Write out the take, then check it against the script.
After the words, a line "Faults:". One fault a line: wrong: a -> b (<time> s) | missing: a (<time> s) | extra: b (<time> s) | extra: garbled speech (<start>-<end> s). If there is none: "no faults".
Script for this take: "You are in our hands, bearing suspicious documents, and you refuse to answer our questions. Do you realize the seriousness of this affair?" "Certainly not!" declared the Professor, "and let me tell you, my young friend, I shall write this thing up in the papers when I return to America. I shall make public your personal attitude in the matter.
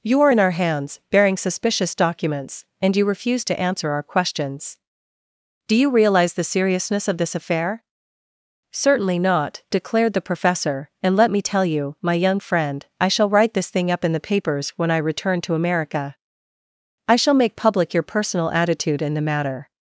"You are in our hands, bearing suspicious documents, and you refuse to answer our questions. Do you realize the seriousness of this affair?" "Certainly not!" declared the Professor, "and let me tell you, my young friend, I shall write this thing up in the papers when I return to America. I shall make public your personal attitude in the matter.
Faults:
no faults